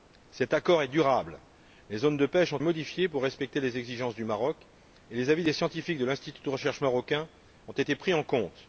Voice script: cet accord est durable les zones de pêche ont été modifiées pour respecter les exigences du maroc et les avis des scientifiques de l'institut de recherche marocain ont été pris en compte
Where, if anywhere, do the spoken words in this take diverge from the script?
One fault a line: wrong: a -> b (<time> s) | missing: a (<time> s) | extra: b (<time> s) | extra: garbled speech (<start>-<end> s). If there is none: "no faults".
missing: été (2.6 s)